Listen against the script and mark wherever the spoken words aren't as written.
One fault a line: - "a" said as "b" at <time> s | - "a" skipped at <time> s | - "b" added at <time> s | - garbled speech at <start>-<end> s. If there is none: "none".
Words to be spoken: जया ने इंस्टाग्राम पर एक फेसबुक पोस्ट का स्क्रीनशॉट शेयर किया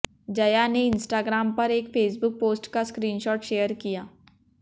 none